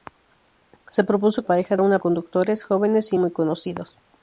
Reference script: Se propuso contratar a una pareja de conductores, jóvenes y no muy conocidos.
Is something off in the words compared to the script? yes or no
yes